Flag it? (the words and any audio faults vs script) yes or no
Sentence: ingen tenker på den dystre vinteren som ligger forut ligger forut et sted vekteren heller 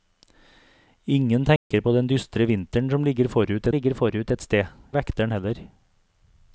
yes